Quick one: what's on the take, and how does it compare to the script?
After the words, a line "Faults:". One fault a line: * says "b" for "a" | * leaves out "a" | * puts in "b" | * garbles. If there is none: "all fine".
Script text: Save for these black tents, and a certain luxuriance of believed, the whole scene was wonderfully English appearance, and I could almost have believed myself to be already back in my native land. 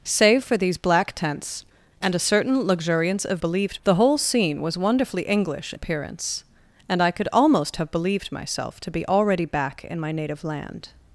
Save for these black tents, and a certain luxuriance of believed, the whole scene was wonderfully English appearance, and I could almost have believed myself to be already back in my native land.
Faults:
all fine